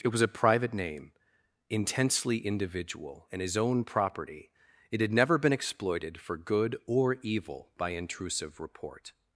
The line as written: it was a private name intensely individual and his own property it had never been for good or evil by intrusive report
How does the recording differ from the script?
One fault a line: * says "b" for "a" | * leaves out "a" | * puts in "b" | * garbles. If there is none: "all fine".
* puts in "exploited"